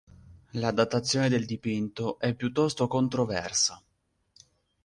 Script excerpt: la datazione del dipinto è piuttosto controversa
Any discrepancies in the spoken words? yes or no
no